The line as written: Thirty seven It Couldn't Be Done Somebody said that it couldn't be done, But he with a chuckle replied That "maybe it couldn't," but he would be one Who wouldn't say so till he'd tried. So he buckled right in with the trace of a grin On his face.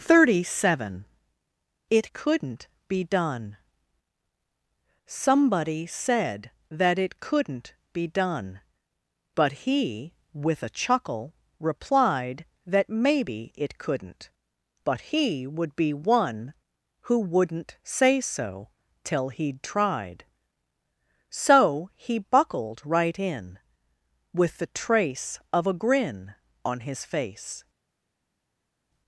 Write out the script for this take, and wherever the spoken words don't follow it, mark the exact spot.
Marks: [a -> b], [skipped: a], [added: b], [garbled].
Thirty seven It Couldn't Be Done Somebody said that it couldn't be done, But he with a chuckle replied That "maybe it couldn't," but he would be one Who wouldn't say so till he'd tried. So he buckled right in with the trace of a grin On his face.